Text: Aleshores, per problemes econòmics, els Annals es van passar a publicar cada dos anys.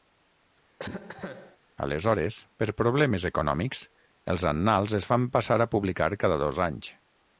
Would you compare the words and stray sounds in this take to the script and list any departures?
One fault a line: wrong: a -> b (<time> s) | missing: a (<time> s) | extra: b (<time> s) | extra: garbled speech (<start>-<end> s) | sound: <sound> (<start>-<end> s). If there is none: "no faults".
sound: cough (0.8-1.6 s)